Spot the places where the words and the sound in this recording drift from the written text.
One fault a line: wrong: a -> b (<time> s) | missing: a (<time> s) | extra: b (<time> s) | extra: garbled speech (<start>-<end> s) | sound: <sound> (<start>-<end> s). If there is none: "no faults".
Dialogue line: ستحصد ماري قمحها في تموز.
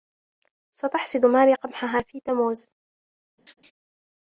sound: laugh (3.4-3.7 s)